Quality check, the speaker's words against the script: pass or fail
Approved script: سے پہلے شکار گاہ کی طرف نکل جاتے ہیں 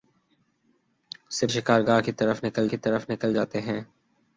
fail